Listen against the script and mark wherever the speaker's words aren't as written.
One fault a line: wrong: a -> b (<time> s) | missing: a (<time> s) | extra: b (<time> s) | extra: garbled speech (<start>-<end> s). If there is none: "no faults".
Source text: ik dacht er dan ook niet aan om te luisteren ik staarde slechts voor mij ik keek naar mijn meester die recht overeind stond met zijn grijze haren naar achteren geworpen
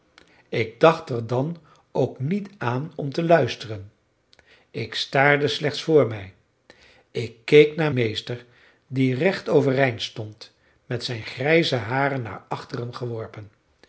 missing: mijn (7.9 s)